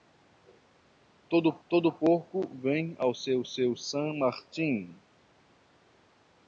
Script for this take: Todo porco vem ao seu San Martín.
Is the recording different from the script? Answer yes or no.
yes